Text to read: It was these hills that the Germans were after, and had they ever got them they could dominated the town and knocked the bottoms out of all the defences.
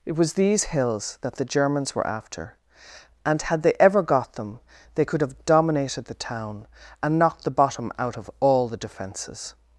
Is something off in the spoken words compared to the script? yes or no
yes